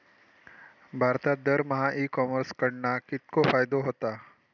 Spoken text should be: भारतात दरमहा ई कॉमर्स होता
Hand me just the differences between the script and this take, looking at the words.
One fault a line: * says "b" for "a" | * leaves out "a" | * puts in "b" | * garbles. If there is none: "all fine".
* puts in "कडणा कितको फायदो"